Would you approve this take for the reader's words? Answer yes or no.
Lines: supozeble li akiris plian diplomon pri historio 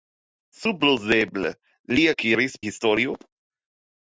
no